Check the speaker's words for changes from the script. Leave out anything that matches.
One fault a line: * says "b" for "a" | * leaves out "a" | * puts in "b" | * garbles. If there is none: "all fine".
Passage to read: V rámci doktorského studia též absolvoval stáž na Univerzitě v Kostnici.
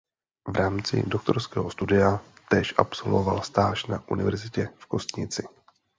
all fine